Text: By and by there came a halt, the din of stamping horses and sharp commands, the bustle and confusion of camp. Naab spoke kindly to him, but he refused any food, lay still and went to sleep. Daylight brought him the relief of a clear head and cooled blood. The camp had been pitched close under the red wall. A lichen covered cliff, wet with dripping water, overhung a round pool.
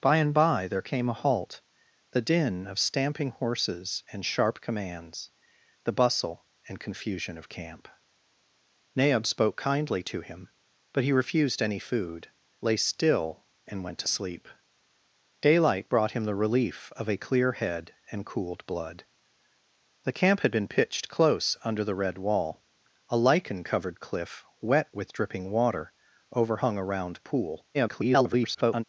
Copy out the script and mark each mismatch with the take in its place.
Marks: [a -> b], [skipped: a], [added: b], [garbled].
By and by there came a halt, the din of stamping horses and sharp commands, the bustle and confusion of camp. Naab spoke kindly to him, but he refused any food, lay still and went to sleep. Daylight brought him the relief of a clear head and cooled blood. The camp had been pitched close under the red wall. A lichen covered cliff, wet with dripping water, overhung a round pool. [garbled]